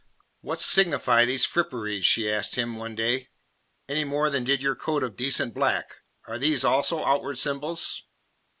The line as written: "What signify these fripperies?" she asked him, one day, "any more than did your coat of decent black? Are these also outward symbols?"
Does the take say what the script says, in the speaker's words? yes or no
yes